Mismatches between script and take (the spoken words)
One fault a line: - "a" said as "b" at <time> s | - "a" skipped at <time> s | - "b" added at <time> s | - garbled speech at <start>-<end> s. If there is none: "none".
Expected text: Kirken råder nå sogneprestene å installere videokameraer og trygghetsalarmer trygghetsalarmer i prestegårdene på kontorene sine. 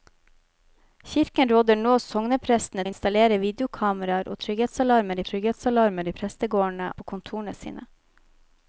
none